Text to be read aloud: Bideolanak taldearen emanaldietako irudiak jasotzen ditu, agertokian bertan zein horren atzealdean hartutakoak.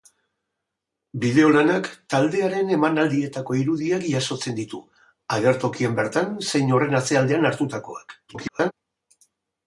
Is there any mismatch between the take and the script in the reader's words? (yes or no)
yes